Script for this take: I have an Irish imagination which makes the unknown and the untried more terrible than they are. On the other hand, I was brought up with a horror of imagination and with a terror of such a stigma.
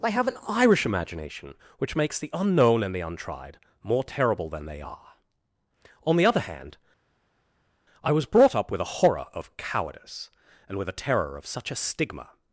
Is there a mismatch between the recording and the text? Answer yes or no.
yes